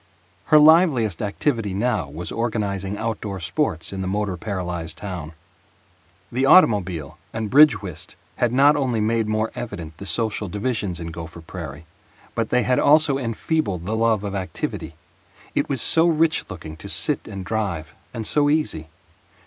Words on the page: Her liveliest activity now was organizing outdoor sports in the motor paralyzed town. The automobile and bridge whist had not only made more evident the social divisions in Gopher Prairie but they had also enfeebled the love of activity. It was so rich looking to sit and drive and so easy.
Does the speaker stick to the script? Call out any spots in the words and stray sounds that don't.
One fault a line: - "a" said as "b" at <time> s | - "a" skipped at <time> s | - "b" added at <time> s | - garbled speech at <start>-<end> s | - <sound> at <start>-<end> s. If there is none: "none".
none